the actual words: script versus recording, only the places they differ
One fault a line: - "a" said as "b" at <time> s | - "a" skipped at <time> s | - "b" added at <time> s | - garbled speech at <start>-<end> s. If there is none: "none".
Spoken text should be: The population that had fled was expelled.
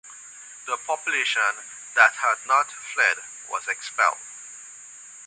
- "not" added at 2.5 s